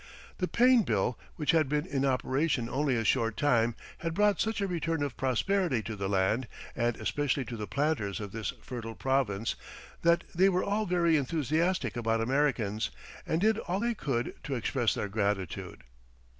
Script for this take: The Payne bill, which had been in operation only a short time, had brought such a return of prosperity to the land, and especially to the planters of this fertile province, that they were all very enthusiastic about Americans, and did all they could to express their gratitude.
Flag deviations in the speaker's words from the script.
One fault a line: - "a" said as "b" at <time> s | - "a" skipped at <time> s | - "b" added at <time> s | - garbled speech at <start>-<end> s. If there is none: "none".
none